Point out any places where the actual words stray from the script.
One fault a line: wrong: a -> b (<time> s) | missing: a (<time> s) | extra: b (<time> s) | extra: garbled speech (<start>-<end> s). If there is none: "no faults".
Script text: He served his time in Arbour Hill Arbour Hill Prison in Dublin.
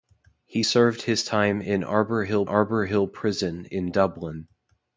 no faults